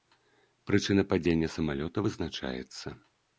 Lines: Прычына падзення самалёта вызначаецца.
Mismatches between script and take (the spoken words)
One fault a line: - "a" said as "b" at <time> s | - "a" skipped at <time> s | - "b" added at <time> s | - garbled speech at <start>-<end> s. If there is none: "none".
none